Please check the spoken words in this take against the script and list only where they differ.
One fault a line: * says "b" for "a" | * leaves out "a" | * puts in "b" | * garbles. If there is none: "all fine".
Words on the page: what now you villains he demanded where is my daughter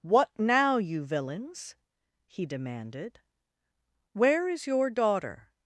* says "your" for "my"